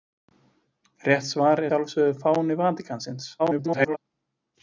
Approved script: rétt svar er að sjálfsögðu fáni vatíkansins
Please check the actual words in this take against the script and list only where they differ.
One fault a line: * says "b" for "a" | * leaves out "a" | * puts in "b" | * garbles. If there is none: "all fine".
* leaves out "að"
* garbles